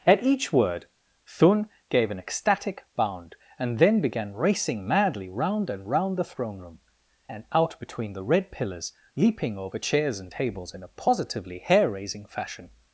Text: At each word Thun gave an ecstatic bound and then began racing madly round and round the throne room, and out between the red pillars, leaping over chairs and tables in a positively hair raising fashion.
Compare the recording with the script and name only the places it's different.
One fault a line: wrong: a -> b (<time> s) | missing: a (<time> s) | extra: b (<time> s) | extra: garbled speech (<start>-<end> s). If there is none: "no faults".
no faults